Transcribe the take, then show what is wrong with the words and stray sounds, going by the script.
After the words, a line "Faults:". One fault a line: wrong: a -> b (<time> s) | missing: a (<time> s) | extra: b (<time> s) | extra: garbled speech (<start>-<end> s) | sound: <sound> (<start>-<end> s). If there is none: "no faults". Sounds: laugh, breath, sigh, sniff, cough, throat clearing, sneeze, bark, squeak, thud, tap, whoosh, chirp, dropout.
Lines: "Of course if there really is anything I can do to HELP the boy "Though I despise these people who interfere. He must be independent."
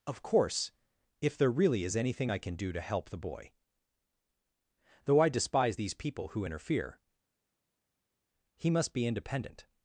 "Of course if there really is anything I can do to HELP the boy "Though I despise these people who interfere. He must be independent."
Faults:
no faults